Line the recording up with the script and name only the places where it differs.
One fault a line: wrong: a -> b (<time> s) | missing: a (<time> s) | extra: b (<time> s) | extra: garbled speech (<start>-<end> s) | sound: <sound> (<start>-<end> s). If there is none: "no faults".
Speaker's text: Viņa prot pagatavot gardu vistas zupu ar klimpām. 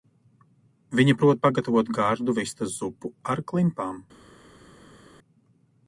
no faults